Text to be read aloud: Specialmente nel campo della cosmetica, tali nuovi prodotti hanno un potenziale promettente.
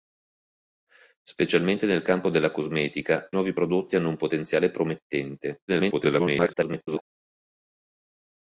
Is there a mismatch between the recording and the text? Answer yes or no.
yes